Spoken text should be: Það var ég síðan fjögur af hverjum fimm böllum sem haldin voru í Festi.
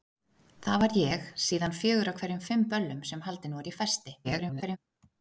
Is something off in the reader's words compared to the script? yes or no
yes